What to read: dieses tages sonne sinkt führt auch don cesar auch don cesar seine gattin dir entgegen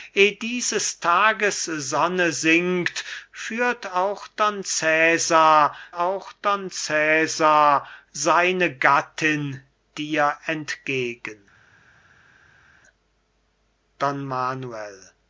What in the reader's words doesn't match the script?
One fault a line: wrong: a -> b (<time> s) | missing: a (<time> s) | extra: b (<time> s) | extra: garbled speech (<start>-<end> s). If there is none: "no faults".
no faults